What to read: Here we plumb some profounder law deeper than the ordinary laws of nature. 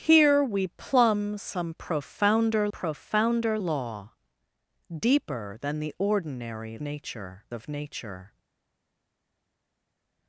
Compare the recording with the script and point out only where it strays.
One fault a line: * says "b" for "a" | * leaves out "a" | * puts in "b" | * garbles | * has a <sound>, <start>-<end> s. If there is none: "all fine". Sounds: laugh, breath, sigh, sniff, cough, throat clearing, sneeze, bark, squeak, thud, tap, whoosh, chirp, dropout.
* puts in "profounder"
* says "nature" for "laws"